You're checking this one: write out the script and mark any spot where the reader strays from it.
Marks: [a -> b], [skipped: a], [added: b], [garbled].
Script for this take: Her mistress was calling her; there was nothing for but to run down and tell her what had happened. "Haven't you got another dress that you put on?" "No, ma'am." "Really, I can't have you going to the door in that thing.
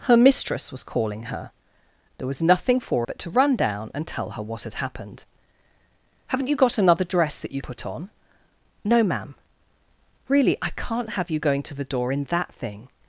Her mistress was calling her; there was nothing for but to run down and tell her what had happened. "Haven't you got another dress that you put on?" "No, ma'am." "Really, I can't have you going to the door in that thing.